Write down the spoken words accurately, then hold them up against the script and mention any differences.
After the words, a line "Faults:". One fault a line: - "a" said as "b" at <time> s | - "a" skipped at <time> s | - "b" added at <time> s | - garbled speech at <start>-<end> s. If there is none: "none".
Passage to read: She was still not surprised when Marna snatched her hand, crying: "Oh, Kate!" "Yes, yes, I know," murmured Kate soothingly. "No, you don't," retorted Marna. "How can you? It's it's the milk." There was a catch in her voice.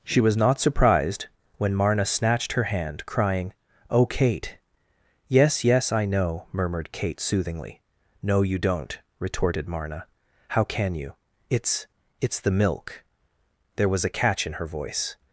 She was not surprised when Marna snatched her hand, crying: "Oh, Kate!" "Yes, yes, I know," murmured Kate soothingly. "No, you don't," retorted Marna. "How can you? It's it's the milk." There was a catch in her voice.
Faults:
- "still" skipped at 0.3 s